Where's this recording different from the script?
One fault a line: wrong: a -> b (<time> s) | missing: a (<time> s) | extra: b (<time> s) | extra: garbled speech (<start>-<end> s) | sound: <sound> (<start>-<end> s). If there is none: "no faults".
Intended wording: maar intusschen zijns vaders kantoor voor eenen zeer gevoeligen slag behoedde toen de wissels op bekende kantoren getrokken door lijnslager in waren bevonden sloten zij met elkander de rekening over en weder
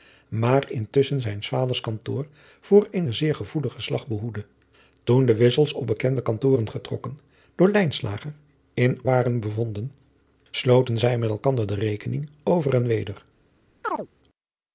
sound: chirp (13.8-14.1 s)